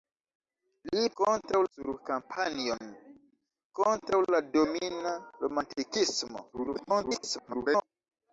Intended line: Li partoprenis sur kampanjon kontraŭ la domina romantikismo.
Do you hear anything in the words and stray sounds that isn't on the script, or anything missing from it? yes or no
yes